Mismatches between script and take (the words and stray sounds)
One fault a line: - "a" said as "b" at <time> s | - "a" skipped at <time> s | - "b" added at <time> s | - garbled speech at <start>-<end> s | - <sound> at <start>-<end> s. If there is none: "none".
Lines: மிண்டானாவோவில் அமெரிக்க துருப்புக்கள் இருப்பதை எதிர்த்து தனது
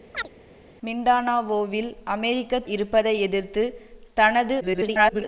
- chirp at 0.1-0.3 s
- "துருப்புக்கள்" skipped at 2.6 s
- garbled speech at 4.6-5.2 s